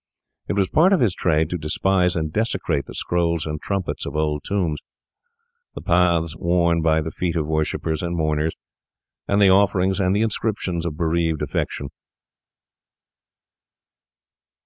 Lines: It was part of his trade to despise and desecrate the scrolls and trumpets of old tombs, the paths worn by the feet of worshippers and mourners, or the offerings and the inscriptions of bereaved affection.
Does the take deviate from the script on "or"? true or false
true